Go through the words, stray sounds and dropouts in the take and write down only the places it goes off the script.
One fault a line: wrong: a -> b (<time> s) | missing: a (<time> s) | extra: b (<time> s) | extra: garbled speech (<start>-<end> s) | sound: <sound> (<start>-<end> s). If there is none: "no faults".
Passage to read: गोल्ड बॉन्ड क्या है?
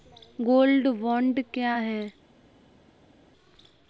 no faults